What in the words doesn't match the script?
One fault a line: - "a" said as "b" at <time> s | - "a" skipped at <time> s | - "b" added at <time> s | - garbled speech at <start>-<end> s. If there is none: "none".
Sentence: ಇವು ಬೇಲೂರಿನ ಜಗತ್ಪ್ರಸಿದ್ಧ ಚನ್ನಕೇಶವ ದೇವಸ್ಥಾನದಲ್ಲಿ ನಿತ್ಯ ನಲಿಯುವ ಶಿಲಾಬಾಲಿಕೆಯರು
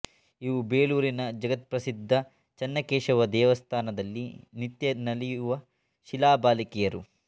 none